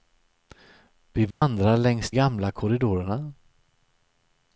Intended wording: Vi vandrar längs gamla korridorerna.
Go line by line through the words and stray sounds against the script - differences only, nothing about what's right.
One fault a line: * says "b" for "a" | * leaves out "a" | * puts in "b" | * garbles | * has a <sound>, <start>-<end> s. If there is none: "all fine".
* has a dropout, 1.3-1.4 s